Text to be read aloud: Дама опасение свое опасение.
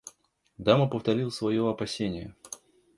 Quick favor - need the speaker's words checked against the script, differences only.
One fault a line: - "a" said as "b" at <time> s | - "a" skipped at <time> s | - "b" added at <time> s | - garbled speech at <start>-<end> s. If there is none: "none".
- "опасение" said as "повторила" at 0.9 s